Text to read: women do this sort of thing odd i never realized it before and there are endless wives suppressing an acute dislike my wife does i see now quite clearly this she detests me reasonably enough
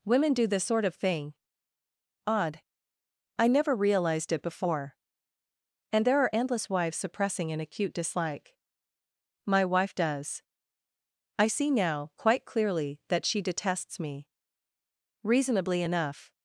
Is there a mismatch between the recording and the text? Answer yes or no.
yes